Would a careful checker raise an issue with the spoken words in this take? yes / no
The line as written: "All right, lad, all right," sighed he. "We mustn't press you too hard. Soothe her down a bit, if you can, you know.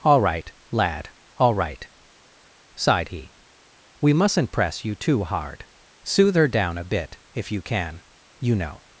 no